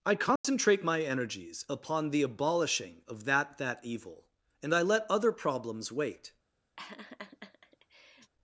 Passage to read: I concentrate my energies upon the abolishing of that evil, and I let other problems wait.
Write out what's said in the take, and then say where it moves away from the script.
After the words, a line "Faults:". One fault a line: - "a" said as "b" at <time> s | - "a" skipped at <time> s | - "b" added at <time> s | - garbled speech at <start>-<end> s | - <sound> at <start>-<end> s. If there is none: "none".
I concentrate my energies upon the abolishing of that that evil, and I let other problems wait.
Faults:
- dropout at 0.4-0.4 s
- "that" added at 3.6 s
- laugh at 6.8-8.3 s